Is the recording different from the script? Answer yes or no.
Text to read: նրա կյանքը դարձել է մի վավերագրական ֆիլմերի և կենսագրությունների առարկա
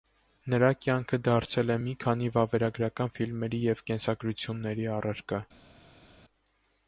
yes